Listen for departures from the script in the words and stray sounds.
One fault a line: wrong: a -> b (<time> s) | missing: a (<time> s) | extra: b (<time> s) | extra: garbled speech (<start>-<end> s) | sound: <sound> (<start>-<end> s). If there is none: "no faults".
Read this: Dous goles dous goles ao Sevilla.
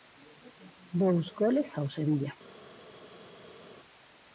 missing: dous goles (1.7 s)